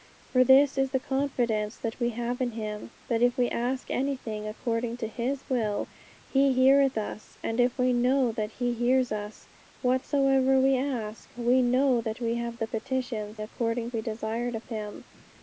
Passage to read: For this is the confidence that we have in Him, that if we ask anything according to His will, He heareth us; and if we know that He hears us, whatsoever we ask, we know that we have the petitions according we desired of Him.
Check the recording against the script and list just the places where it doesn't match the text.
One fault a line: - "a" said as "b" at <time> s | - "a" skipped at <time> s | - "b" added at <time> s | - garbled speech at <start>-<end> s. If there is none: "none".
none